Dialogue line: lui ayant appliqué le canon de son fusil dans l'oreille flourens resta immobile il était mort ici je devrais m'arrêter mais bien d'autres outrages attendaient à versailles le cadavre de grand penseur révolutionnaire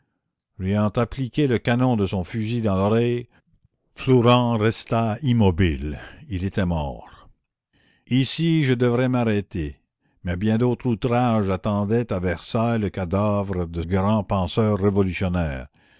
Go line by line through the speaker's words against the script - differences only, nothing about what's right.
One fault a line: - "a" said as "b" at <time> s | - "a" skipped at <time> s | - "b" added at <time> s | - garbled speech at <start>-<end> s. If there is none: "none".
none